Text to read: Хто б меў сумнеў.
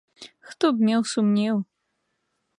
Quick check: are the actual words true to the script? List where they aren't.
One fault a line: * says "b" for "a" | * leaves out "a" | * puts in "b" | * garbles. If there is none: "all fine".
all fine